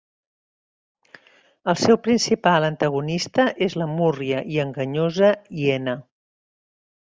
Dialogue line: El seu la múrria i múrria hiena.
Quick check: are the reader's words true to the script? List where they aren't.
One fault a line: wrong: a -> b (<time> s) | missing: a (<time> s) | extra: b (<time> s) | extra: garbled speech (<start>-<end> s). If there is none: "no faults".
extra: principal antagonista és (2.1 s)
wrong: múrria -> enganyosa (4.7 s)